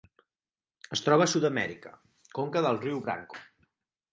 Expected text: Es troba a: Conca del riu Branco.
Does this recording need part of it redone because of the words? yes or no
yes